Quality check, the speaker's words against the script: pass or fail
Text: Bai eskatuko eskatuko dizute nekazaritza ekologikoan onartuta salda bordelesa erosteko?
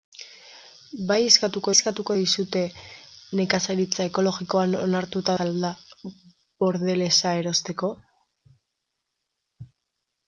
pass